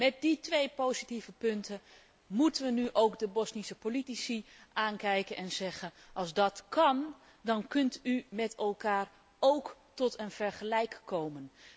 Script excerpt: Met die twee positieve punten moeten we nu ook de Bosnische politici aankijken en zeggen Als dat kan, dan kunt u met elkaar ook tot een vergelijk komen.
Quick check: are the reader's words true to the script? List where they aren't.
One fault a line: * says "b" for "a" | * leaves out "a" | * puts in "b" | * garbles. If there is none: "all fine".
all fine